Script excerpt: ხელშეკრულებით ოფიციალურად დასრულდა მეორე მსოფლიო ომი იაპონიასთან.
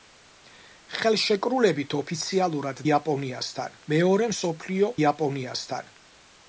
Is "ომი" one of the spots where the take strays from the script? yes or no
yes